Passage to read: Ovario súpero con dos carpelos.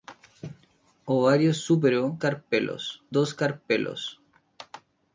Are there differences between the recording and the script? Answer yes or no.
yes